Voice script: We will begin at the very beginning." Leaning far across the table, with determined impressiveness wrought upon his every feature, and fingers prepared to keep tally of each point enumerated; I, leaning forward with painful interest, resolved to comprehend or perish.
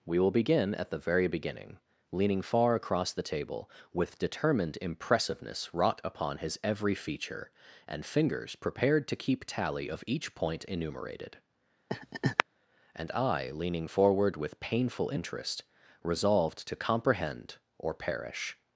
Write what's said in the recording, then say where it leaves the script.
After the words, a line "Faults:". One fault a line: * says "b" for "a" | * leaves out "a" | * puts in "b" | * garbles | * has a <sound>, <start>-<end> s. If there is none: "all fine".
We will begin at the very beginning." Leaning far across the table, with determined impressiveness wrought upon his every feature, and fingers prepared to keep tally of each point enumerated; and I, leaning forward with painful interest, resolved to comprehend or perish.
Faults:
* has a laugh, 11.9-12.4 s
* puts in "and"